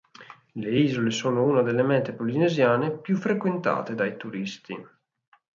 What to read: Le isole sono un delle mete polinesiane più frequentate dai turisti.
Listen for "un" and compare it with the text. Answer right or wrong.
wrong